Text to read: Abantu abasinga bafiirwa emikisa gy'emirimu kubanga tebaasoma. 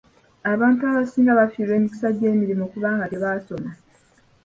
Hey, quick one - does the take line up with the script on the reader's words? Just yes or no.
yes